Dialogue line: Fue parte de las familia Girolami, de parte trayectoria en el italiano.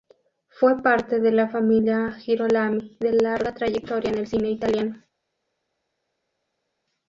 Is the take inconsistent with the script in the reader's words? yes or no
yes